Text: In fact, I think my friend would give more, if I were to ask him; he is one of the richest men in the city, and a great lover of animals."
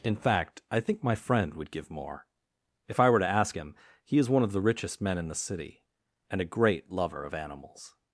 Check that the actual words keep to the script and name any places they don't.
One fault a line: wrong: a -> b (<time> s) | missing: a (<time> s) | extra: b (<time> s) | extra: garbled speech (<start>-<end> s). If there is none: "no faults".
no faults